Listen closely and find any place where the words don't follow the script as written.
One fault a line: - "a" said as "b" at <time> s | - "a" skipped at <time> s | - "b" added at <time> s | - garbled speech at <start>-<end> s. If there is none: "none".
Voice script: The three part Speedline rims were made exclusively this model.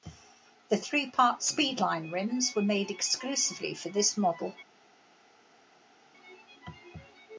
- "for" added at 3.8 s